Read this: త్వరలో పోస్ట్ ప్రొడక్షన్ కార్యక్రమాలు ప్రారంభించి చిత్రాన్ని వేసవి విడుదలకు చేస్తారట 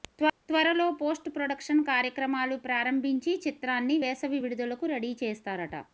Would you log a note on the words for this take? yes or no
yes